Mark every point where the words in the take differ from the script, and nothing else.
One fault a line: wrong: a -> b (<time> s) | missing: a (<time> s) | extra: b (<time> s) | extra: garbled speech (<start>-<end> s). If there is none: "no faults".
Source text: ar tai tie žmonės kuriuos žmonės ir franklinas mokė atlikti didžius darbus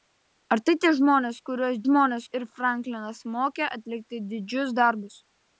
no faults